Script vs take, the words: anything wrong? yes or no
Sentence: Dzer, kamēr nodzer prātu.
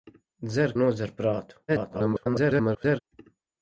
yes